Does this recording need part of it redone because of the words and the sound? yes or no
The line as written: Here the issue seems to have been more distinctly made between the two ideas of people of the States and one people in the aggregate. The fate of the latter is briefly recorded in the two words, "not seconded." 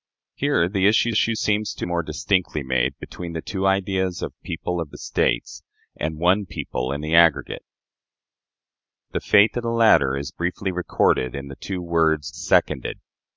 yes